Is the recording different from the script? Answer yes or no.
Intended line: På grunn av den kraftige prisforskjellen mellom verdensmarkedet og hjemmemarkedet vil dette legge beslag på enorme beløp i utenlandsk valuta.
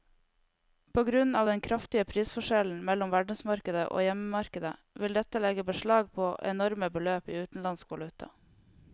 no